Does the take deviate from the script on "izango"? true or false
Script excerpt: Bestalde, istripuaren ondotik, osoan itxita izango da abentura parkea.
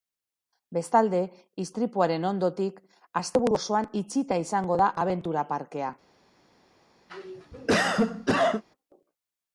false